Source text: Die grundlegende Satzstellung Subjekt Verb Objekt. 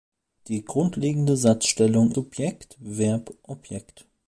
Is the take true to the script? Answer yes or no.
yes